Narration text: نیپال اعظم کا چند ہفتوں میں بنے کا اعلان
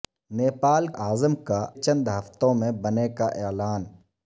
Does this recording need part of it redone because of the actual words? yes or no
no